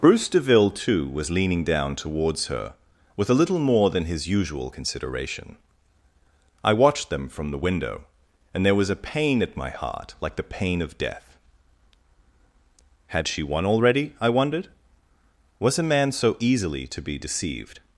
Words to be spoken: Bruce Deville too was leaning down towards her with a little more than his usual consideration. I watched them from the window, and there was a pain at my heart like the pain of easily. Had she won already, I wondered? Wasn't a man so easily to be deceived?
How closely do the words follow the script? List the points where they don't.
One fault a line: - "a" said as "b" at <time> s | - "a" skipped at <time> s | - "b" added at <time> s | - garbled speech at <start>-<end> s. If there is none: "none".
- "easily" said as "death" at 11.0 s
- "Wasn't" said as "Was" at 15.6 s